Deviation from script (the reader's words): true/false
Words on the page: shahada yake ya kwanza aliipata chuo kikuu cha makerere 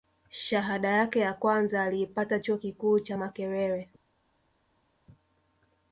false